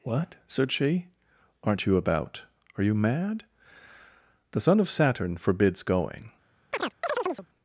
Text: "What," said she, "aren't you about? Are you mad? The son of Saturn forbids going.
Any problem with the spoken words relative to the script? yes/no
no